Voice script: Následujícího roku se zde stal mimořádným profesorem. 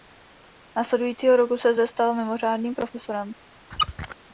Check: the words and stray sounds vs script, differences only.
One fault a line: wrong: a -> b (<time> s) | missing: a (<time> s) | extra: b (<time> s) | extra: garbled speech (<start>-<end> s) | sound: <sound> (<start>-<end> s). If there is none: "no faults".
sound: squeak (3.7-4.2 s)